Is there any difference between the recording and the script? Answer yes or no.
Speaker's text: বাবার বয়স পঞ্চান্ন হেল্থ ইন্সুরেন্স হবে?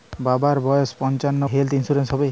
no